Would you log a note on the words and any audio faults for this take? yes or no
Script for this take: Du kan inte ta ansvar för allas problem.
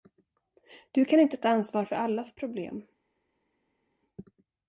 no